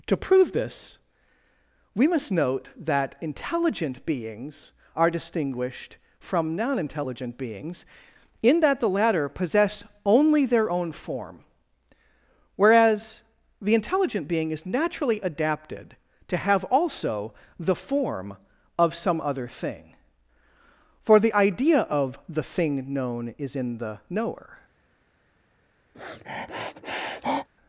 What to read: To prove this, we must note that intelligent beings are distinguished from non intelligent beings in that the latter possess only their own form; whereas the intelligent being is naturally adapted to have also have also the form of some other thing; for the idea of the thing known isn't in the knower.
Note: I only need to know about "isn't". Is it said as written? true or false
false